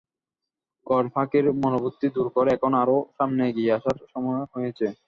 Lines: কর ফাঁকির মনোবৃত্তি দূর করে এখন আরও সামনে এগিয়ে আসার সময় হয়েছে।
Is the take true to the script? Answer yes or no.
yes